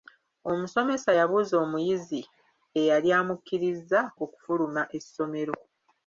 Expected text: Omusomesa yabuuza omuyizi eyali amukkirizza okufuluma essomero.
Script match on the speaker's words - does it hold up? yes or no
yes